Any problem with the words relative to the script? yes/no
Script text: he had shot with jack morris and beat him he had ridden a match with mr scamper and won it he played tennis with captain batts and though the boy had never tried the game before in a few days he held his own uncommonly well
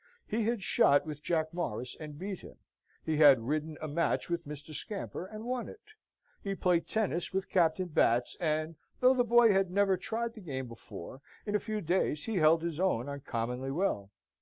no